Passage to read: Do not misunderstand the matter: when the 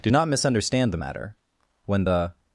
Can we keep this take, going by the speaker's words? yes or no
yes